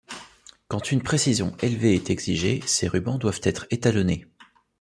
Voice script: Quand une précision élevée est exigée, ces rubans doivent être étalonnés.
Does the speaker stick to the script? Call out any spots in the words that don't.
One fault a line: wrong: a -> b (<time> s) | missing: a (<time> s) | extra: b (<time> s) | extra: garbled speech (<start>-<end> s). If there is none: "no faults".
no faults